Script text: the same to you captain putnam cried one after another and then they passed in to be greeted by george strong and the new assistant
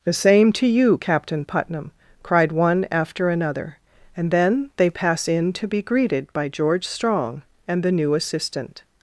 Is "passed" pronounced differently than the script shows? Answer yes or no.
yes